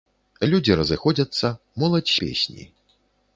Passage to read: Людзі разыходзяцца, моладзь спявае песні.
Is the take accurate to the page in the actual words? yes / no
no